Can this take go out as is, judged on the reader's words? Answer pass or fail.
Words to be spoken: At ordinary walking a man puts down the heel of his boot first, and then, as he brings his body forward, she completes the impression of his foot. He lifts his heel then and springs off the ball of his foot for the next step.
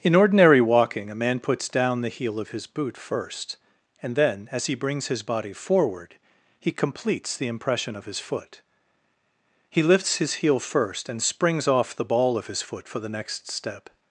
fail